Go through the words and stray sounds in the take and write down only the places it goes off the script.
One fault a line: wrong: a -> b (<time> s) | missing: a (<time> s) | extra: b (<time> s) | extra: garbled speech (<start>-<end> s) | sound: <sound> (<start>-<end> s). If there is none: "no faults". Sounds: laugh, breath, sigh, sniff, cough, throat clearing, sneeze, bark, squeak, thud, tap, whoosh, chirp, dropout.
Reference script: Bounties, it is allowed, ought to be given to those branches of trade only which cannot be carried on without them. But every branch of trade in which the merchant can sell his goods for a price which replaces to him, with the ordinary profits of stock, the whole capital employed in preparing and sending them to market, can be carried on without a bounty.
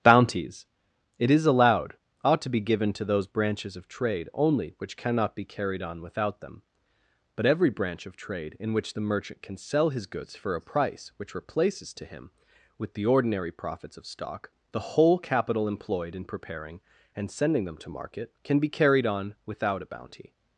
no faults